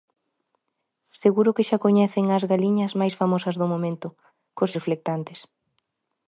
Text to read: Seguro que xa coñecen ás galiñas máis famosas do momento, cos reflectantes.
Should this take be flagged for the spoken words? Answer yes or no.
no